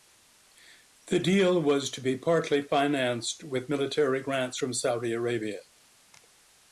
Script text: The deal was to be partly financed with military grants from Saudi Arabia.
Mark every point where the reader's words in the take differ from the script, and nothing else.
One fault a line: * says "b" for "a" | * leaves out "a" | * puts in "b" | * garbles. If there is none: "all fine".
all fine